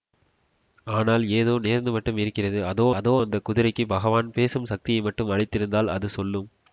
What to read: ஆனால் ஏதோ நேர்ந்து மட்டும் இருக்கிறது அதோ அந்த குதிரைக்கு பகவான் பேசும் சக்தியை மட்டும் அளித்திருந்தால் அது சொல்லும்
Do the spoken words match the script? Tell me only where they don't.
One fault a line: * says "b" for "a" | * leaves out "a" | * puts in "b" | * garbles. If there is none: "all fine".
* puts in "அதோ"